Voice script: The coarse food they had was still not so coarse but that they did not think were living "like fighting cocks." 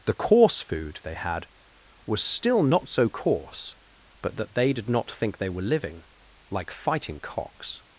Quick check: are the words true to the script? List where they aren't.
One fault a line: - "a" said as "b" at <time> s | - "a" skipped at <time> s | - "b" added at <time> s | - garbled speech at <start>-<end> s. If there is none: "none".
- "they" added at 5.4 s